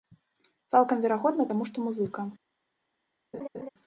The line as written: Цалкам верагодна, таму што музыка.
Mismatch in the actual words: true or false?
false